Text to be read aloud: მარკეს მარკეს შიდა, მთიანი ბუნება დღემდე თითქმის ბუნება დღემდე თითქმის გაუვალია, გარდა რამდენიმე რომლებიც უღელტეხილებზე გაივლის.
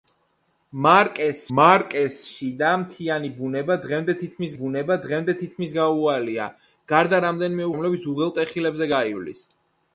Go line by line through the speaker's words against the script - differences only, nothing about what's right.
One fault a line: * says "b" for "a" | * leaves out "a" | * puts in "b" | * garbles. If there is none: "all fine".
all fine